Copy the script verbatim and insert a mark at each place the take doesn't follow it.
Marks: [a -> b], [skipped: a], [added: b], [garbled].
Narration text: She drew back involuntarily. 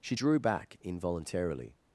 She drew back involuntarily.